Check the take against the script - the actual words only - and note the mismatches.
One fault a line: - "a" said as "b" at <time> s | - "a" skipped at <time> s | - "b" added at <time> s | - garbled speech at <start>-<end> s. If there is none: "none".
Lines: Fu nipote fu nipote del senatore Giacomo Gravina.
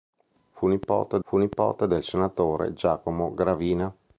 none